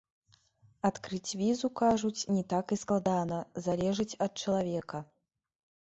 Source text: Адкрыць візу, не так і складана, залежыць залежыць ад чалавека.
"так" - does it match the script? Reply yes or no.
yes